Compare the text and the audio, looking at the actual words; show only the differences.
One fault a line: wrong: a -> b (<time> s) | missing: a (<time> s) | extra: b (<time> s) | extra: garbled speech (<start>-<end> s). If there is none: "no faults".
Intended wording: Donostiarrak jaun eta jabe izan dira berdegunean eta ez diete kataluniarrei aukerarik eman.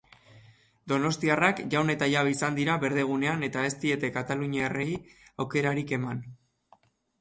no faults